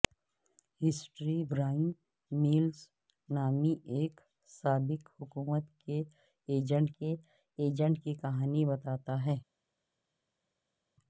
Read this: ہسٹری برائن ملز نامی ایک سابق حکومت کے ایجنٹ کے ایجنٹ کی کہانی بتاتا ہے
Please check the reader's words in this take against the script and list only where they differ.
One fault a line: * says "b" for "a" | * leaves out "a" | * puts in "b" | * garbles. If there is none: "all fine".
all fine